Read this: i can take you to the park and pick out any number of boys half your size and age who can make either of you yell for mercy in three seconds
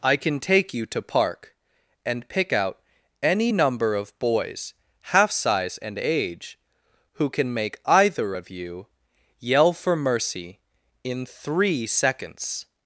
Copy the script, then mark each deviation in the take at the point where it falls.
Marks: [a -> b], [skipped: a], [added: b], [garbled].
i can take you to [skipped: the] park and pick out any number of boys half [skipped: your] size and age who can make either of you yell for mercy in three seconds